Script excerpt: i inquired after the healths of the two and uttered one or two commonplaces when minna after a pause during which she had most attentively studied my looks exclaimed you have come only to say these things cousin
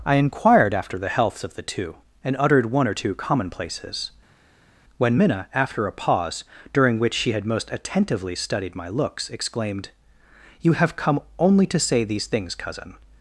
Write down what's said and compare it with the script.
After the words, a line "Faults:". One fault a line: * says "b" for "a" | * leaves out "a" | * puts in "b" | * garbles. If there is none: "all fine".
i inquired after the healths of the two and uttered one or two commonplaces when minna after a pause during which she had most attentively studied my looks exclaimed you have come only to say these things cousin
Faults:
all fine